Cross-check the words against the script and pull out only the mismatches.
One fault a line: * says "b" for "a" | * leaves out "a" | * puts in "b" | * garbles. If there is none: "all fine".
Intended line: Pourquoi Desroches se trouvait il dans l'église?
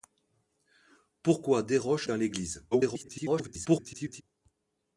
* leaves out "se trouvait il"
* garbles